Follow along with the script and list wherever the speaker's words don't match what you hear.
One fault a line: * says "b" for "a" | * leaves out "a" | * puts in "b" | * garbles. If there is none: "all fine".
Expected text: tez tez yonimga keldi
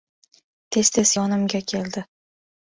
all fine